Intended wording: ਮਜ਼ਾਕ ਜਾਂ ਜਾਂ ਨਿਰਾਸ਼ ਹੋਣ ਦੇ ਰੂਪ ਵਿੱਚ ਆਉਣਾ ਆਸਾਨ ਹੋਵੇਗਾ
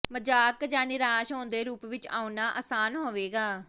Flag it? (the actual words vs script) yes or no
yes